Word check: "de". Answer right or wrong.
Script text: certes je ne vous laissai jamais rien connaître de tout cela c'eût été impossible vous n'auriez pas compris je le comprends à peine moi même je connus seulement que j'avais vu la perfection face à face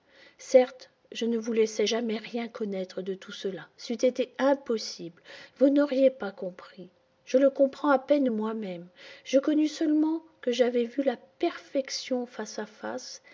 right